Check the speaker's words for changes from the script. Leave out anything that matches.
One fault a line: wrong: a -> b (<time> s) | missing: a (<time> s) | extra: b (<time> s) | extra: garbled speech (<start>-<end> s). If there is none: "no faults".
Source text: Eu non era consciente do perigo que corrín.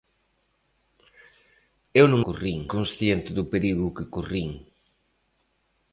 wrong: era -> corrín (2.3 s)